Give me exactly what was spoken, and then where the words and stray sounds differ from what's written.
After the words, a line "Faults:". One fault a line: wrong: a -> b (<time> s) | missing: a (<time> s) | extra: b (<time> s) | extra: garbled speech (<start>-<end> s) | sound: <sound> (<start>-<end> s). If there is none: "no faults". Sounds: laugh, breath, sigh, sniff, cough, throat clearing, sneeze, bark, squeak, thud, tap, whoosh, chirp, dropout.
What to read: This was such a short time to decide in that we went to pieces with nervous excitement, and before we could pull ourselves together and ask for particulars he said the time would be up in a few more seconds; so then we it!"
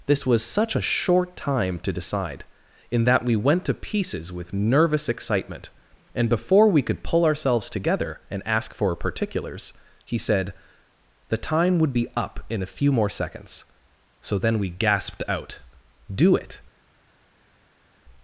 This was such a short time to decide in that we went to pieces with nervous excitement, and before we could pull ourselves together and ask for particulars he said the time would be up in a few more seconds; so then we gasped out, "Do it!"
Faults:
extra: gasped out Do (14.7 s)